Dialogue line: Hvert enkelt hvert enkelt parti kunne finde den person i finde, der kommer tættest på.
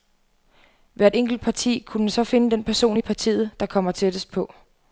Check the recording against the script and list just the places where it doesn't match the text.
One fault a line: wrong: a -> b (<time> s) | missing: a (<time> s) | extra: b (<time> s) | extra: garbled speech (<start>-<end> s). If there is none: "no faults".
missing: hvert enkelt (1.4 s)
extra: så (2.1 s)
wrong: finde -> partiet (3.0 s)